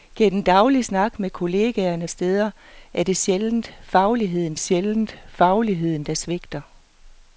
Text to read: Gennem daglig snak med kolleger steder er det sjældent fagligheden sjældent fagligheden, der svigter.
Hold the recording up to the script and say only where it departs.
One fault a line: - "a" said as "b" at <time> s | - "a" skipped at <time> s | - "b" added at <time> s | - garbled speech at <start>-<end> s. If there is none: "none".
none